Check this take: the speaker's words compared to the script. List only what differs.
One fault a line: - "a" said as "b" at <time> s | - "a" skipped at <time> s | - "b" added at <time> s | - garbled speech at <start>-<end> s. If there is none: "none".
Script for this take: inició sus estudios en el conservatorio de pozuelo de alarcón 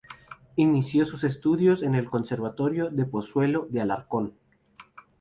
none